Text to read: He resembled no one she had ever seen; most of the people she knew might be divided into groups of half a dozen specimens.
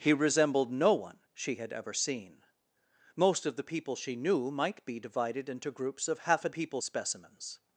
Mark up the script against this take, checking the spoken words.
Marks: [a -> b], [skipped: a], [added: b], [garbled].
He resembled no one she had ever seen; most of the people she knew might be divided into groups of half a [dozen -> people] specimens.